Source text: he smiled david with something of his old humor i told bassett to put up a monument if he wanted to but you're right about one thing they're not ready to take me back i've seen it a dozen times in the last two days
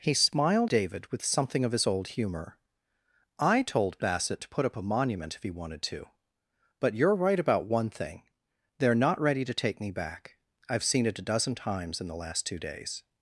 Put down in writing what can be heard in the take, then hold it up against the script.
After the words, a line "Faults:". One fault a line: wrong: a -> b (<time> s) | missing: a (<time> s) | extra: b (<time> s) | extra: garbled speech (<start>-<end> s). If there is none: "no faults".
he smiled david with something of his old humor i told bassett to put up a monument if he wanted to but you're right about one thing they're not ready to take me back i've seen it a dozen times in the last two days
Faults:
no faults